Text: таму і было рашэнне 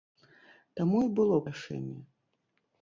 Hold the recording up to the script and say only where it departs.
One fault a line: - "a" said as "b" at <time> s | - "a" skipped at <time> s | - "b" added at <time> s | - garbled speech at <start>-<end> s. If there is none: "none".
none